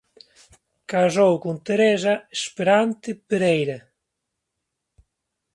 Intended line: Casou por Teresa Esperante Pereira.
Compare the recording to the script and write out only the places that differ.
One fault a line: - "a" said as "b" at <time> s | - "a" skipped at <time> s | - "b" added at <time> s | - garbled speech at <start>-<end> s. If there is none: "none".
- "por" said as "con" at 1.4 s